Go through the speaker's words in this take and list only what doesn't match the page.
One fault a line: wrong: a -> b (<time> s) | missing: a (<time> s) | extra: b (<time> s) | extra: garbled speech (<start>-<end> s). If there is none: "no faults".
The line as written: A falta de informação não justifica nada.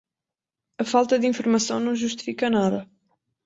no faults